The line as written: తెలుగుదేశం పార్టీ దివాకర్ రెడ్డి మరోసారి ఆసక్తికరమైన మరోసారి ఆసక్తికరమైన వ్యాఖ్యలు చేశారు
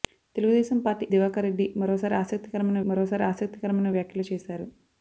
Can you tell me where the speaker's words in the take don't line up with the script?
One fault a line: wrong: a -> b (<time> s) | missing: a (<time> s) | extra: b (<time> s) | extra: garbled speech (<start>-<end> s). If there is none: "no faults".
no faults